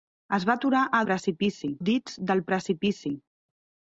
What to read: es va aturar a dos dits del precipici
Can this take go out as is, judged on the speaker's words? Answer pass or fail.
fail